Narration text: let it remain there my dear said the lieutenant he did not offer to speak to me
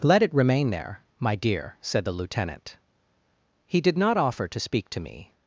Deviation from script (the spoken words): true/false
false